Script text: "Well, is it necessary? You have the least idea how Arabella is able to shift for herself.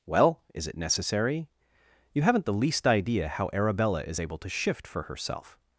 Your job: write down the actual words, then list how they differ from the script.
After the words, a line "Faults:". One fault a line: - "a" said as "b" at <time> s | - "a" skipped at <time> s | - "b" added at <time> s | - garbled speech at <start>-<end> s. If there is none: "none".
"Well, is it necessary? You haven't the least idea how Arabella is able to shift for herself.
Faults:
- "have" said as "haven't" at 2.2 s